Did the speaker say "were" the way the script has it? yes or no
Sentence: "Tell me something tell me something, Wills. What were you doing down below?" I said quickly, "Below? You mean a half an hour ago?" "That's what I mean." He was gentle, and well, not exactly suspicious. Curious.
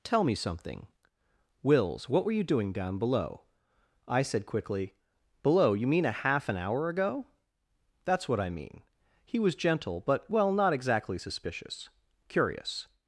yes